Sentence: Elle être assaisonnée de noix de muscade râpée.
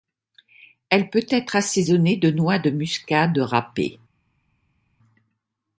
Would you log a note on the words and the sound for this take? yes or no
yes